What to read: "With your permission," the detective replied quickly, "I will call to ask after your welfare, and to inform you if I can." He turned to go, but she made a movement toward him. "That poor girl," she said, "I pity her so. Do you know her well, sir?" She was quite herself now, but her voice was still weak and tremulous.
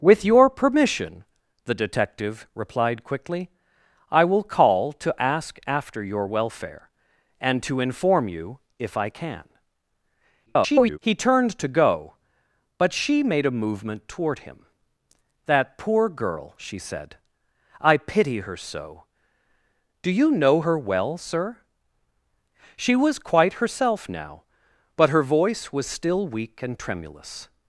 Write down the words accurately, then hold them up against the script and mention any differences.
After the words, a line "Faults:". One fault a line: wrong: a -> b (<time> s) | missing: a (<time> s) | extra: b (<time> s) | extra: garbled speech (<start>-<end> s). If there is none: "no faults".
"With your permission," the detective replied quickly, "I will call to ask after your welfare, and to inform you if I can." [garbled] He turned to go, but she made a movement toward him. "That poor girl," she said, "I pity her so. Do you know her well, sir?" She was quite herself now, but her voice was still weak and tremulous.
Faults:
extra: garbled speech (10.5-11.0 s)